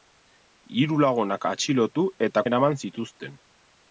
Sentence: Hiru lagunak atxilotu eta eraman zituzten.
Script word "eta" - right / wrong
right